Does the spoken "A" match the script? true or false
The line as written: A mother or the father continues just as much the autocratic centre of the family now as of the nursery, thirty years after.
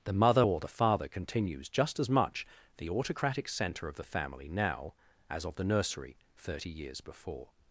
false